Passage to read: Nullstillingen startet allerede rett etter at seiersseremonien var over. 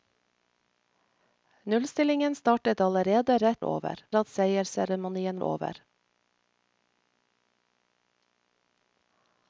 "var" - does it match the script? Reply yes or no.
no